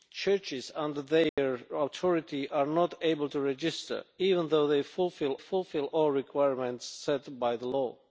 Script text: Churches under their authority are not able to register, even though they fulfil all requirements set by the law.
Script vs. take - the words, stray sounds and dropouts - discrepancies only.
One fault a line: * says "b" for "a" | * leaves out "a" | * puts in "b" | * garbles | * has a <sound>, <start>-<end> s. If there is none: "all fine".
* has a dropout, 1.3-1.4 s
* puts in "fulfil"